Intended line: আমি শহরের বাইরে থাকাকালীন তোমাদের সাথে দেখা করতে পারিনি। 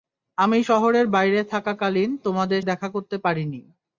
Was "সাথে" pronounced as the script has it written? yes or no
no